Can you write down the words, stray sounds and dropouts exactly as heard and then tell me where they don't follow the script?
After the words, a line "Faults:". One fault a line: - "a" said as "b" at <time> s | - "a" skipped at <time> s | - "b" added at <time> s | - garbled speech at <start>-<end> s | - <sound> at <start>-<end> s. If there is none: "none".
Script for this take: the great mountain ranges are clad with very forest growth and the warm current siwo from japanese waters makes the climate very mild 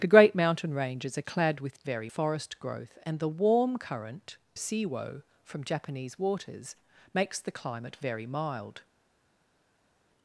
the great mountain ranges are clad with very forest growth and the warm current siwo from japanese waters makes the climate very mild
Faults:
none